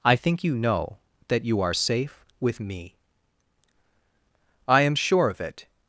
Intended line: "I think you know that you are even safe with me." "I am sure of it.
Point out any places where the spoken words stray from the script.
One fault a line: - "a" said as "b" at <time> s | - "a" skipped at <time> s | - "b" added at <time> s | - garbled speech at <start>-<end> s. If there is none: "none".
- "even" skipped at 1.8 s